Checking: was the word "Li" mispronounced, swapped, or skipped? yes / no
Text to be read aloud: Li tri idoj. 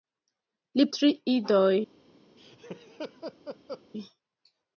no